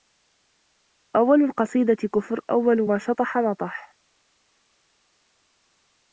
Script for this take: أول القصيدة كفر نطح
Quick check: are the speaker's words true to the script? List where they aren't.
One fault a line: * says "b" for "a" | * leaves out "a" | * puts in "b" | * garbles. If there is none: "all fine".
* puts in "أول ما شطح"